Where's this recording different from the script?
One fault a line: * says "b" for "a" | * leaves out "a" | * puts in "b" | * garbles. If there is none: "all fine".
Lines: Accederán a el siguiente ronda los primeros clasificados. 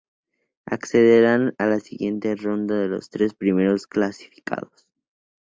* says "la" for "el"
* puts in "tres"